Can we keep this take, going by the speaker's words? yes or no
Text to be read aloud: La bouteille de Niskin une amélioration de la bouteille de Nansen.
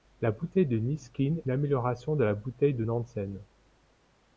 yes